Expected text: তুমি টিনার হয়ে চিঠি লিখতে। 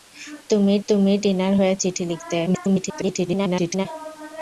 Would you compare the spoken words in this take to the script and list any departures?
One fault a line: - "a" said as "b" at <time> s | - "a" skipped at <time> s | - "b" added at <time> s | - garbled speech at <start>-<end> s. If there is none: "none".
- "তুমি" added at 0.9 s
- garbled speech at 2.5-3.9 s